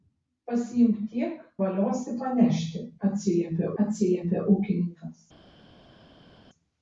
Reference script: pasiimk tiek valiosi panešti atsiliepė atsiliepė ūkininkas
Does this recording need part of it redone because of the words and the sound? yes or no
no